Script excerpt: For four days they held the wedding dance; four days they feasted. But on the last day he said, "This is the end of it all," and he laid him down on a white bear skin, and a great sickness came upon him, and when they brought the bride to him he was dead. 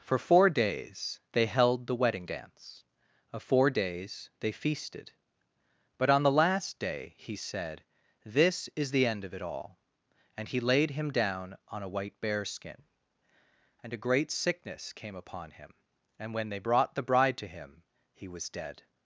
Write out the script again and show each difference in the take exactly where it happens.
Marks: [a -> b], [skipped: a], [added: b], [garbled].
For four days they held the wedding dance; [added: of] four days they feasted. But on the last day he said, "This is the end of it all," and he laid him down on a white bear skin, and a great sickness came upon him, and when they brought the bride to him he was dead.